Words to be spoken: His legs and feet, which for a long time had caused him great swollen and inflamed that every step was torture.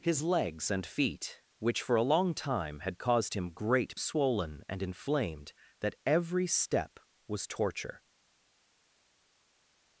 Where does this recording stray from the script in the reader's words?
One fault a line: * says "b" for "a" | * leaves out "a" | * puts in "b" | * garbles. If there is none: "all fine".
all fine